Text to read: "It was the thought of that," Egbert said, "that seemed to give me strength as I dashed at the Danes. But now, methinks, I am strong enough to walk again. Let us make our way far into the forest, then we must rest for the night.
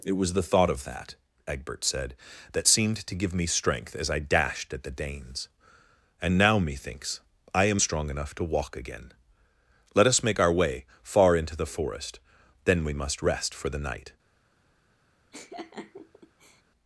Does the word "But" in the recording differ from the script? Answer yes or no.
yes